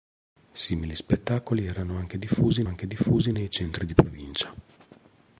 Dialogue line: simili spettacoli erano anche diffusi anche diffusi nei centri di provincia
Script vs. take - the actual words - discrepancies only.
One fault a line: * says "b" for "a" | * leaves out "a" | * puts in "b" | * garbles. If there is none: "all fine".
all fine